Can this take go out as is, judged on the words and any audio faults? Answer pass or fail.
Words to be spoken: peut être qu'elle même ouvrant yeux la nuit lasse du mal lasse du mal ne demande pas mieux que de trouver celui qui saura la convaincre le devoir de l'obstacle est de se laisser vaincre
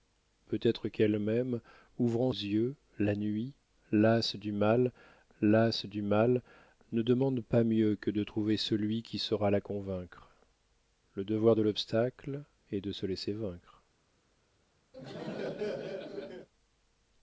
fail